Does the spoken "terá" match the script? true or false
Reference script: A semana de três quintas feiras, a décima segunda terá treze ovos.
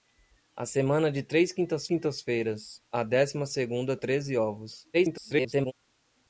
false